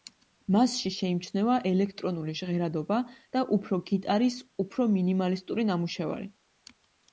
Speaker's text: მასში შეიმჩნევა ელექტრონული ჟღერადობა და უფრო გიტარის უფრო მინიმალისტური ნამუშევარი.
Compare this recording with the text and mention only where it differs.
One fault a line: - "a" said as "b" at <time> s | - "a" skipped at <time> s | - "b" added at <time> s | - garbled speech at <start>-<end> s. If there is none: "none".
none